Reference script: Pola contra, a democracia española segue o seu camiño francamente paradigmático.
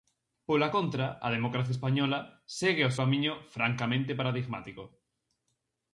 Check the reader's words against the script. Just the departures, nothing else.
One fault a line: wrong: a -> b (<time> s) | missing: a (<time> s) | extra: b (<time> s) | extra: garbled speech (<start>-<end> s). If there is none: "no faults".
missing: seu (2.9 s)